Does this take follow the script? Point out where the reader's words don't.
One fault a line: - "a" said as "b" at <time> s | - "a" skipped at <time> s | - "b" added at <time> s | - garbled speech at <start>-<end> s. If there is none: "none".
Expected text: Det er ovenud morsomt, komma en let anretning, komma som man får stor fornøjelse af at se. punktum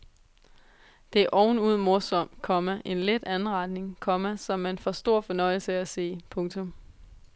none